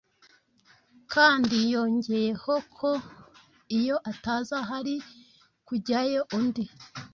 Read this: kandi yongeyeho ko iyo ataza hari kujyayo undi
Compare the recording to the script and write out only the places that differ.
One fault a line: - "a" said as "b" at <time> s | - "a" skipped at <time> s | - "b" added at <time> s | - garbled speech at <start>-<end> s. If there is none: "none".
none